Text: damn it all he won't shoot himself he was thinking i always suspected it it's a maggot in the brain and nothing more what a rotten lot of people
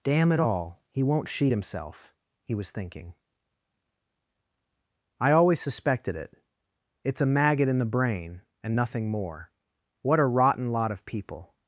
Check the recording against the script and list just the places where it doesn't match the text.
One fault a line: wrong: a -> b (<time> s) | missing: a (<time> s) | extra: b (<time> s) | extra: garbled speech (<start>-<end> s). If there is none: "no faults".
wrong: shoot -> sheet (1.3 s)